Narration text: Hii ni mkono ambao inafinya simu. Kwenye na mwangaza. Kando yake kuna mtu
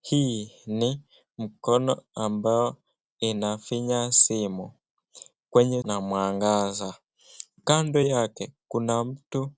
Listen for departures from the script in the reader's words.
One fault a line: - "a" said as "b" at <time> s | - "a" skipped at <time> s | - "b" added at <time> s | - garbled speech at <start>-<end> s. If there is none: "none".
none